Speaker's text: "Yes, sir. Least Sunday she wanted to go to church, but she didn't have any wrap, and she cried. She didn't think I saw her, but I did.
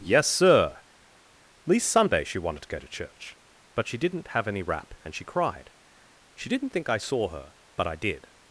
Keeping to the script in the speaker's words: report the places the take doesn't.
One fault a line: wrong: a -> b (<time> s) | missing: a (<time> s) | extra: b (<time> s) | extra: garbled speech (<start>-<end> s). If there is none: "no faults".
no faults